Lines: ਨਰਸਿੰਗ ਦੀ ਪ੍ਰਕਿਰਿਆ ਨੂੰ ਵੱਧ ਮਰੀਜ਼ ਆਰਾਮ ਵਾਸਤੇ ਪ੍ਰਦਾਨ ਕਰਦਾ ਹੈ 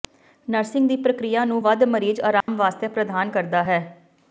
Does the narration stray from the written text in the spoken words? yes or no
no